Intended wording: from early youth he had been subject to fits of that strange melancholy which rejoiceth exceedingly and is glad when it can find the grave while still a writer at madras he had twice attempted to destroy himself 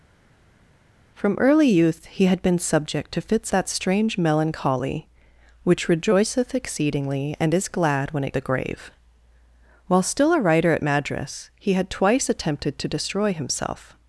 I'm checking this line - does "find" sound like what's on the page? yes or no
no